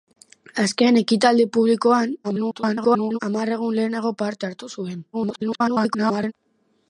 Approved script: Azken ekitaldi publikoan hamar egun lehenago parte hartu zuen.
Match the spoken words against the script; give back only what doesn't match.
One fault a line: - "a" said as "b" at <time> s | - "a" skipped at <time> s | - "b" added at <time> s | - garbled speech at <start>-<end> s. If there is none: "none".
- garbled speech at 2.2-3.2 s
- garbled speech at 5.1-6.3 s